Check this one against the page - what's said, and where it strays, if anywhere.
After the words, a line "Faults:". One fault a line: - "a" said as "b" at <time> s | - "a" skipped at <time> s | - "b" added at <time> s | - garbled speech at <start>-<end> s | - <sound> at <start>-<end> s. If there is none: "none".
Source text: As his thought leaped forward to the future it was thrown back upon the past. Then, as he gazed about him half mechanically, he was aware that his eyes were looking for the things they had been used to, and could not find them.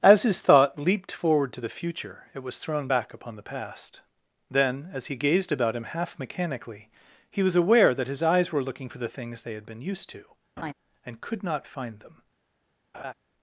As his thought leaped forward to the future it was thrown back upon the past. Then, as he gazed about him half mechanically, he was aware that his eyes were looking for the things they had been used to, and could not find them.
Faults:
- laugh at 10.6-10.7 s
- laugh at 12.9-13.1 s